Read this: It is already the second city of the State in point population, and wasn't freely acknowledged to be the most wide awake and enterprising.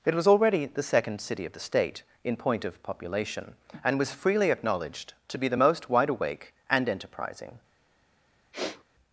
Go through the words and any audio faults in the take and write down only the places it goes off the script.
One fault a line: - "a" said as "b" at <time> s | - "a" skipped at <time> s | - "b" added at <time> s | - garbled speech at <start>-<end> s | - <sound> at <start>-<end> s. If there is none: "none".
- "is" said as "was" at 0.1 s
- "of" added at 2.6 s
- "wasn't" said as "was" at 4.0 s
- sniff at 8.5-8.8 s